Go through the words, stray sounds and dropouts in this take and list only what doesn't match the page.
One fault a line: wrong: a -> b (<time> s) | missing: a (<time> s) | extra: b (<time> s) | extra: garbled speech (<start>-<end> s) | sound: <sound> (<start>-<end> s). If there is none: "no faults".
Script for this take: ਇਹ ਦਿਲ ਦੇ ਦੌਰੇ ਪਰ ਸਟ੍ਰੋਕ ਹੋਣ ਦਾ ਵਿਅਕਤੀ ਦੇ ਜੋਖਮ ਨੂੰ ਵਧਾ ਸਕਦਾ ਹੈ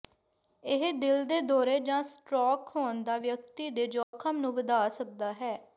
wrong: ਪਰ -> ਜਾਂ (1.8 s)
sound: dropout (4.0-4.1 s)